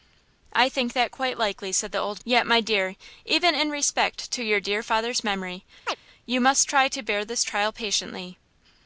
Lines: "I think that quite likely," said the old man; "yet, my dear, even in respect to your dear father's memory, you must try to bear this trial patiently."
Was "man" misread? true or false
true